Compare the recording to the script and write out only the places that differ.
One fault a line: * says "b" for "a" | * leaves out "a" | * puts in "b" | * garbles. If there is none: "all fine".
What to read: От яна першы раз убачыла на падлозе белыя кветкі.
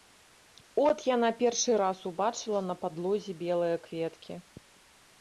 all fine